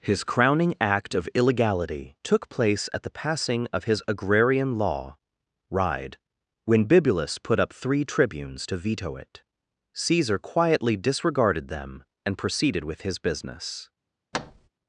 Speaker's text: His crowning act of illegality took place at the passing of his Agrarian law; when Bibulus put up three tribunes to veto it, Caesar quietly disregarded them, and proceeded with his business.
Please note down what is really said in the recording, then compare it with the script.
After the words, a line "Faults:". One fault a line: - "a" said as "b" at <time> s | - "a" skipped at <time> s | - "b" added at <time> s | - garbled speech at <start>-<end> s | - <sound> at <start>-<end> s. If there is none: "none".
His crowning act of illegality took place at the passing of his Agrarian law; ride when Bibulus put up three tribunes to veto it, Caesar quietly disregarded them, and proceeded with his business.
Faults:
- "ride" added at 5.7 s
- thud at 14.3-14.7 s